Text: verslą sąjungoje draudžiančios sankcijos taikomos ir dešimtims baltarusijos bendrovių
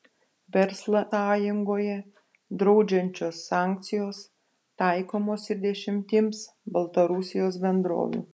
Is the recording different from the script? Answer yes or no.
no